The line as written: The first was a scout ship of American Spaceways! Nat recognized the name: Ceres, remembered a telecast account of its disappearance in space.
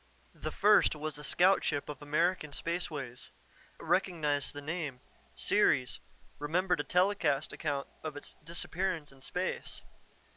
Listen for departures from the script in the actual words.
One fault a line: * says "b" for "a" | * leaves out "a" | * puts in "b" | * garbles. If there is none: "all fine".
* leaves out "Nat"